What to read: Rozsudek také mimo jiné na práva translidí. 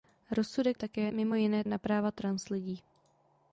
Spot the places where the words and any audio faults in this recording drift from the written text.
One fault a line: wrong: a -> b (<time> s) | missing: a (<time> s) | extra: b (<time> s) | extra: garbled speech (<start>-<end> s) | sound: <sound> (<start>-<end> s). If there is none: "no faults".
no faults